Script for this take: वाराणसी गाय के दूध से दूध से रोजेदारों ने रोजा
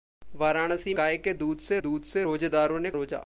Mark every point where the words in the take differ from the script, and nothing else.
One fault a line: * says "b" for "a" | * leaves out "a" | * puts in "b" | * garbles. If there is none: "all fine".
all fine